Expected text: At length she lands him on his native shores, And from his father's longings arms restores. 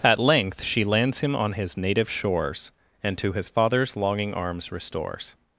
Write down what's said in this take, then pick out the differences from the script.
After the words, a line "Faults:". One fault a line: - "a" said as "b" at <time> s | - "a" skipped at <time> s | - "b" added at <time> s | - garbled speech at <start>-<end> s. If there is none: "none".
At length she lands him on his native shores, And to his father's longing arms restores.
Faults:
- "from" said as "to" at 3.2 s
- "longings" said as "longing" at 4.0 s